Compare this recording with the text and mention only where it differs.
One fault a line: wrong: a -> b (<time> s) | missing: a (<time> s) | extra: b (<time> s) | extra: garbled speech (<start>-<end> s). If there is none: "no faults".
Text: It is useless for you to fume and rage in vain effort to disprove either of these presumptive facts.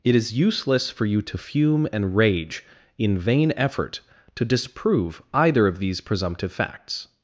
no faults